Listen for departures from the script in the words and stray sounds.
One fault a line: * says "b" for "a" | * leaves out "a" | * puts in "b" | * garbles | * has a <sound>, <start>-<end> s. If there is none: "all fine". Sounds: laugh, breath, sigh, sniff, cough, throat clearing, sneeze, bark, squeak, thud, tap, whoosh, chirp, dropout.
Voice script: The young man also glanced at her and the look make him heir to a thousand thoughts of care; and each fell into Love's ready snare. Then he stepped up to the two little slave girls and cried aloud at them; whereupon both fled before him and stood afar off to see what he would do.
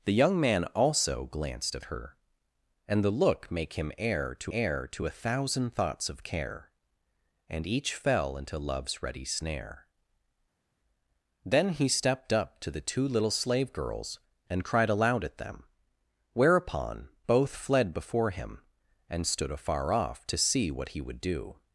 * puts in "heir to"